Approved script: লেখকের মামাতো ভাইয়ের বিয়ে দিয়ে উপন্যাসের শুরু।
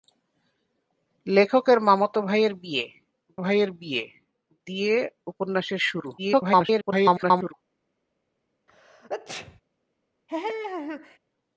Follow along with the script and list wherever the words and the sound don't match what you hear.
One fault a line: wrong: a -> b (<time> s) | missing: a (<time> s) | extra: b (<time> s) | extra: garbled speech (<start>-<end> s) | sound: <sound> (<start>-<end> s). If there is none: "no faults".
extra: ভাইয়ের বিয়ে (3.4 s)
extra: garbled speech (6.2-7.5 s)
sound: sneeze (8.7-9.6 s)
sound: laugh (10.3-11.2 s)